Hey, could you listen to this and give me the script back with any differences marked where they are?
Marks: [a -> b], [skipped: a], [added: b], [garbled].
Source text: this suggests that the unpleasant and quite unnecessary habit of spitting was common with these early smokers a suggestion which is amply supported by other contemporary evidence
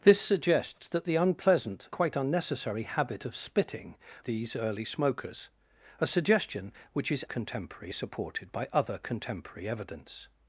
this suggests that the unpleasant [skipped: and] quite unnecessary habit of spitting [skipped: was common with] these early smokers a suggestion which is [amply -> contemporary] supported by other contemporary evidence